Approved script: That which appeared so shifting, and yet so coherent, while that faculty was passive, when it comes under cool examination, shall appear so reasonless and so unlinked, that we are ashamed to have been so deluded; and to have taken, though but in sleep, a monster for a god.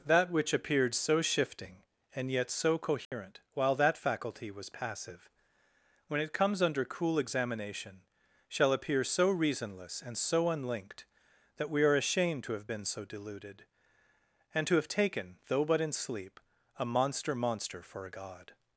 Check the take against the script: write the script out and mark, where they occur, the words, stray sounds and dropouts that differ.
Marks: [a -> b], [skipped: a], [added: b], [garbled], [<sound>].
That which appeared so shifting, and yet so coherent, [dropout] while that faculty was passive, when it comes under cool examination, shall appear so reasonless and so unlinked, that we are ashamed to have been so deluded; and to have taken, though but in sleep, a monster [added: monster] for a god.